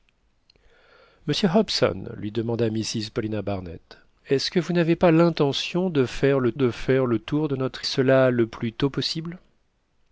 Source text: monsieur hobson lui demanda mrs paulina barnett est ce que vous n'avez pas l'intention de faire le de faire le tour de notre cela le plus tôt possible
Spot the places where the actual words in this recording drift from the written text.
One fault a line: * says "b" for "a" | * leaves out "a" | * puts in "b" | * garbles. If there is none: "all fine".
all fine